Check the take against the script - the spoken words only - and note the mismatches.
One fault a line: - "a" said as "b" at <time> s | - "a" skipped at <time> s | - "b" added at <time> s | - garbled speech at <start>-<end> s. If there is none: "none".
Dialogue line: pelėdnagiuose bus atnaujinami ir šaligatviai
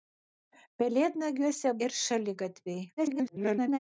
- "bus atnaujinami" skipped at 1.7 s
- garbled speech at 3.0-3.8 s